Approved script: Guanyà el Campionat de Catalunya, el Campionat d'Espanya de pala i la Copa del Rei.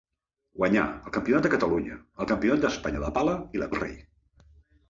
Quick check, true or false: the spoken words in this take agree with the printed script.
false